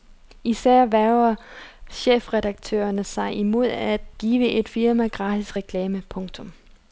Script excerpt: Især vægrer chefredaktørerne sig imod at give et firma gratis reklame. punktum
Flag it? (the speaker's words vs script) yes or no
no